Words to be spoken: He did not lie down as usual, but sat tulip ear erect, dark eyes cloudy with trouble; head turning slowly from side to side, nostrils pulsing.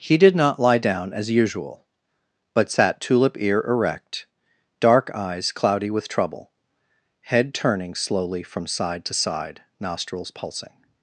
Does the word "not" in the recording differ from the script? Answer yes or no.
no